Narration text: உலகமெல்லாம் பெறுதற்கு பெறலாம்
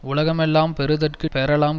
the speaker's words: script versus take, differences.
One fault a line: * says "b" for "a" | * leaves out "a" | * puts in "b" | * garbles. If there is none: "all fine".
all fine